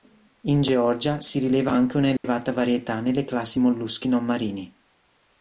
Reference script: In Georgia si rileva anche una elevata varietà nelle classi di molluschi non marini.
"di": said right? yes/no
no